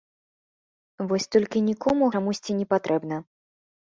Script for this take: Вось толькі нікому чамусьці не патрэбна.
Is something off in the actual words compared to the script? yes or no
no